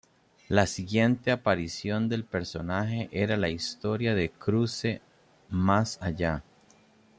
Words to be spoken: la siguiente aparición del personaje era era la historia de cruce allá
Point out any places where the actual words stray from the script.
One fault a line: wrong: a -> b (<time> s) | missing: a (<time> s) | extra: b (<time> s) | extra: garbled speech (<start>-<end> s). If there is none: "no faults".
missing: era (3.4 s)
extra: más (5.5 s)